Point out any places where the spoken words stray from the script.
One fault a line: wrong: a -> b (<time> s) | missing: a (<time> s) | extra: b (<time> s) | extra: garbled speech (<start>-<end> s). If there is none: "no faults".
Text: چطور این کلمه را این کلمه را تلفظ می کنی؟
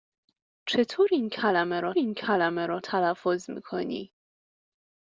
no faults